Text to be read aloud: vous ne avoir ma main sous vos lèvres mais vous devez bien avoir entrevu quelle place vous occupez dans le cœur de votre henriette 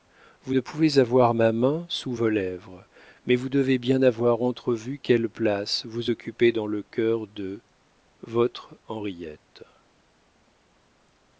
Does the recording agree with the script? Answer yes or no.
no